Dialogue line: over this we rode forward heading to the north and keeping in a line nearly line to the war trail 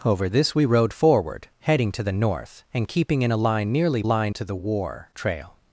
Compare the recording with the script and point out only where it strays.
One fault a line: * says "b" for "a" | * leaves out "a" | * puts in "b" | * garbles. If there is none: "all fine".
all fine